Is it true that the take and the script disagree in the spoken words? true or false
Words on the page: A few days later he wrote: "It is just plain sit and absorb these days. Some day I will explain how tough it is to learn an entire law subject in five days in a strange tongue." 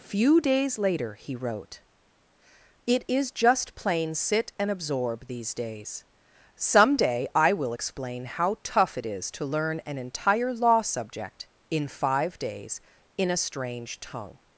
true